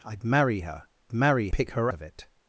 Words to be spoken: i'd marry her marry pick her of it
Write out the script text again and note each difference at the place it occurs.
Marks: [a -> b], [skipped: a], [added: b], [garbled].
i'd marry her marry pick her of it